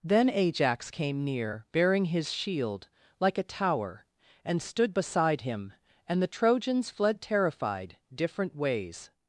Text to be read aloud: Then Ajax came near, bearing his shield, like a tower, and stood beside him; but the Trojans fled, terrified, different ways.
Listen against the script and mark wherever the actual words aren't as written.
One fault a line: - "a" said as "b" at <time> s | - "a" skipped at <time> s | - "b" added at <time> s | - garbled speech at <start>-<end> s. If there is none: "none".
- "but" said as "and" at 6.1 s